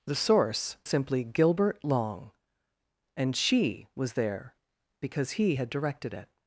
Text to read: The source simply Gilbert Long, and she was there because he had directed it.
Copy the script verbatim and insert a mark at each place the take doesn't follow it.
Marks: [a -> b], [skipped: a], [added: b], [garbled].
The source simply Gilbert Long, and she was there because he had directed it.